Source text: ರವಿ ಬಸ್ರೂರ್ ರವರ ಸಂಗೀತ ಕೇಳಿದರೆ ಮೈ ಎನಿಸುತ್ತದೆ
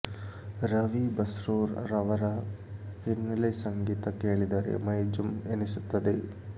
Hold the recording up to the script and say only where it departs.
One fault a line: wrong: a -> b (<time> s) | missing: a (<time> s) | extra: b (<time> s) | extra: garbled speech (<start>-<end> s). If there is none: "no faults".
extra: ಹಿನ್ನೆಲೆ (3.0 s)
extra: ಜುಮ್ (5.1 s)